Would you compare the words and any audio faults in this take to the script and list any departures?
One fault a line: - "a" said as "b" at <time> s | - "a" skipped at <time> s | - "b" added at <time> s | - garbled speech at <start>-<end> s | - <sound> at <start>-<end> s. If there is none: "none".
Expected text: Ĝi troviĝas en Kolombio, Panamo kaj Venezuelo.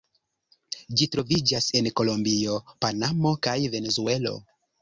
none